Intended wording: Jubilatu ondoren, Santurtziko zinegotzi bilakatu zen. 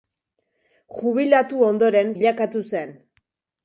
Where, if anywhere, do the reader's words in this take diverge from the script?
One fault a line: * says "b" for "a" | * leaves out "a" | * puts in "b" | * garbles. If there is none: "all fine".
* leaves out "Santurtziko zinegotzi"